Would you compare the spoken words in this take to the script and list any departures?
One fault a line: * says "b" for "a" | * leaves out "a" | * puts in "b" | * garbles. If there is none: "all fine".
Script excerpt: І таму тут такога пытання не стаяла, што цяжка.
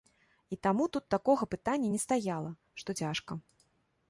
all fine